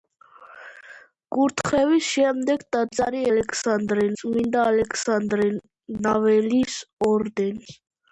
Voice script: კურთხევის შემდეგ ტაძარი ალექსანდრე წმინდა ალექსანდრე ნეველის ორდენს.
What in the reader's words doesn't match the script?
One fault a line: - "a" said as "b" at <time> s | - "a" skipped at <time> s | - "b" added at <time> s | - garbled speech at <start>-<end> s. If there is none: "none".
none